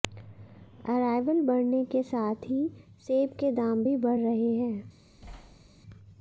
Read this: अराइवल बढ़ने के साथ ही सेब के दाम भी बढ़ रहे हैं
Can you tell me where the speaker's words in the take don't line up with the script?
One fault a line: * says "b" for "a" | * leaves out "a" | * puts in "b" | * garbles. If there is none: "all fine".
all fine